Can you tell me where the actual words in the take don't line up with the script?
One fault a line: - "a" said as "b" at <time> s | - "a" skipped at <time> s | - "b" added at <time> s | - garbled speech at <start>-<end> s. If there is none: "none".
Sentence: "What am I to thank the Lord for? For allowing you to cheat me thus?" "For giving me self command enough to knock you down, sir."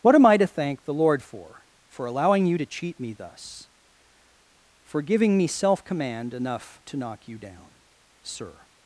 none